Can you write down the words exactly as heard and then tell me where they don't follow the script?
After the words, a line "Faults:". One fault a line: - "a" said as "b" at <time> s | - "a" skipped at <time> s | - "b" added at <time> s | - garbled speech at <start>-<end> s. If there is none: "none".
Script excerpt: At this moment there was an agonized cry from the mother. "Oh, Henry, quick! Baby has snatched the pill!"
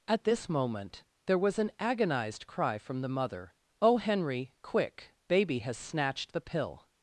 At this moment there was an agonized cry from the mother. "Oh, Henry, quick! Baby has snatched the pill!"
Faults:
none